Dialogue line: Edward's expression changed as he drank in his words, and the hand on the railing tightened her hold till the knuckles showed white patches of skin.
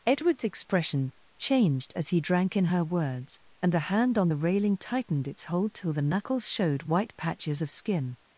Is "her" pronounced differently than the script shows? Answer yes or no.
yes